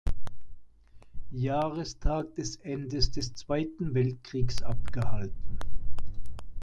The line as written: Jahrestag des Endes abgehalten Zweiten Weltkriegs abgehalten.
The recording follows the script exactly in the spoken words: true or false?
false